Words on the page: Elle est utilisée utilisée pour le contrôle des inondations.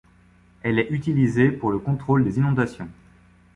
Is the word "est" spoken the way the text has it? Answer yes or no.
yes